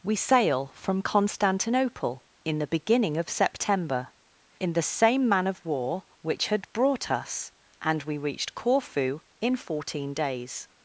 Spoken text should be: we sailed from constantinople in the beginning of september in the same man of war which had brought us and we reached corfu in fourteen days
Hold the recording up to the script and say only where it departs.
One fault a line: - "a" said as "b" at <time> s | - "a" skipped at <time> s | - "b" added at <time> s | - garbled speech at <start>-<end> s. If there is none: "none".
- "sailed" said as "sail" at 0.1 s